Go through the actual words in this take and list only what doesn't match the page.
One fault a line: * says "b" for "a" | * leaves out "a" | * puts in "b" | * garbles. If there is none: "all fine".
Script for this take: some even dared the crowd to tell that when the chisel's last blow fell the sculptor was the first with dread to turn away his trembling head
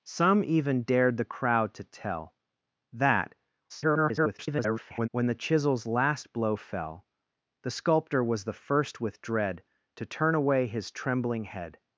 * garbles